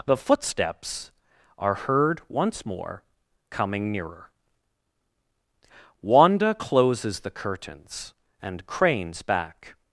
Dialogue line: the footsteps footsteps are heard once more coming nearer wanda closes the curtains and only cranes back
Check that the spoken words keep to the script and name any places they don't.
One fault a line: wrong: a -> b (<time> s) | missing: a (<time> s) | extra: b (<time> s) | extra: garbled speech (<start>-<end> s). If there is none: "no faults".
missing: footsteps (1.1 s)
missing: only (8.6 s)